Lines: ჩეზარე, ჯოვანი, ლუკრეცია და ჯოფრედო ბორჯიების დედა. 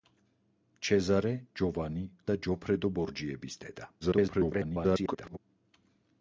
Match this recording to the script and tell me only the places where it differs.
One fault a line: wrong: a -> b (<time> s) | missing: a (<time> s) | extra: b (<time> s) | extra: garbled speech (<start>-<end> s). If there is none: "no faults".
missing: ლუკრეცია (2.0 s)
extra: garbled speech (4.0-5.4 s)